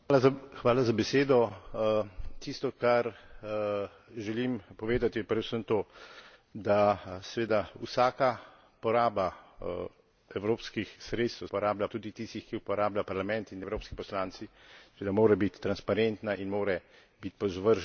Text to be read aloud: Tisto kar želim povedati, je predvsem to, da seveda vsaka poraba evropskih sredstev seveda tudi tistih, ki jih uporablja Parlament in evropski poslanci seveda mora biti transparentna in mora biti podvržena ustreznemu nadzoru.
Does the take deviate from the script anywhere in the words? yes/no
yes